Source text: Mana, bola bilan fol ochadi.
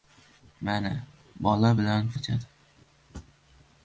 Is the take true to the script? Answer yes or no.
no